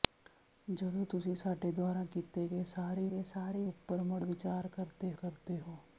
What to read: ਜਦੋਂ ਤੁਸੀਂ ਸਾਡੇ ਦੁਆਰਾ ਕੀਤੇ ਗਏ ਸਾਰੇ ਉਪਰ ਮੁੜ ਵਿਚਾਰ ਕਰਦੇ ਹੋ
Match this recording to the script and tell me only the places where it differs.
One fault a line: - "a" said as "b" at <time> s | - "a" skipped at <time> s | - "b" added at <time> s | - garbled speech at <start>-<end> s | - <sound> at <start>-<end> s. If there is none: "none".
- "ਗਏ ਸਾਰੇ" added at 3.1 s
- "ਕਰਦੇ" added at 5.1 s